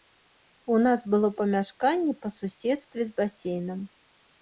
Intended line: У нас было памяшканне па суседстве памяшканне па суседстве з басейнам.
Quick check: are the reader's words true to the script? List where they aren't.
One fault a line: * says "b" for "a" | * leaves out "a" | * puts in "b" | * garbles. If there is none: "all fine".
* leaves out "памяшканне па суседстве"